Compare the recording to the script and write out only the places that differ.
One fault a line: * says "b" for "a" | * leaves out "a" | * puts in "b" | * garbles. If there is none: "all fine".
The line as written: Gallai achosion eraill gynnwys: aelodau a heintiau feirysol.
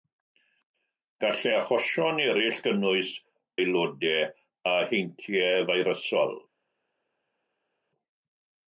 all fine